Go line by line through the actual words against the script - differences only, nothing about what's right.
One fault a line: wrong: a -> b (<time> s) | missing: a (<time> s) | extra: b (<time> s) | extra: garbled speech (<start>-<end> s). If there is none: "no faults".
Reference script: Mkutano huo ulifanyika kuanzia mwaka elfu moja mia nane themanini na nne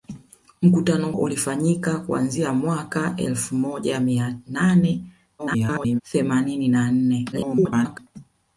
missing: huo (1.1 s)
extra: garbled speech (5.4-6.0 s)
extra: garbled speech (7.3-8.0 s)